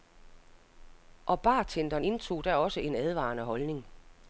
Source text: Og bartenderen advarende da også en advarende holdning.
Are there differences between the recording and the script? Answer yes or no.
yes